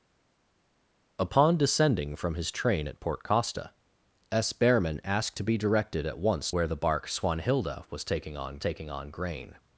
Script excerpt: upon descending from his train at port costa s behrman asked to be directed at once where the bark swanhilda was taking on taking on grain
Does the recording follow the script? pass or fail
pass